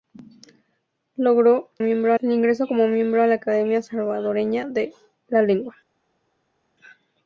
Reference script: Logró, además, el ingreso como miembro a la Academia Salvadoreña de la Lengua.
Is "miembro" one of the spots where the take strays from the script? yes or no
no